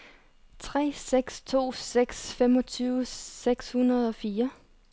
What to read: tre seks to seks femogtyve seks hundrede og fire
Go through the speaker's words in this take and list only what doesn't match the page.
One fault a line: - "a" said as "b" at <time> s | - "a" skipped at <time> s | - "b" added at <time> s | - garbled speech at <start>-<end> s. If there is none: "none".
none